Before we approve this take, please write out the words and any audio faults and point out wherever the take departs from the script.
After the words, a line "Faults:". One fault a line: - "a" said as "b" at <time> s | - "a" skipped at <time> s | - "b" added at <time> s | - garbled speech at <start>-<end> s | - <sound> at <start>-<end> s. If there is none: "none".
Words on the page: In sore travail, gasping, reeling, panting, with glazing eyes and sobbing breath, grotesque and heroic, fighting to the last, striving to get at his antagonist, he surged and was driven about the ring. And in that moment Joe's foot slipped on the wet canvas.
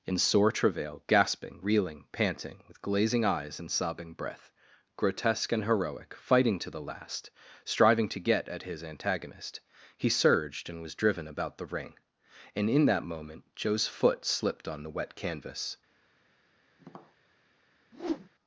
In sore travail, gasping, reeling, panting, with glazing eyes and sobbing breath, grotesque and heroic, fighting to the last, striving to get at his antagonist, he surged and was driven about the ring. And in that moment Joe's foot slipped on the wet canvas.
Faults:
- tap at 16.8-17.2 s
- whoosh at 17.9-18.3 s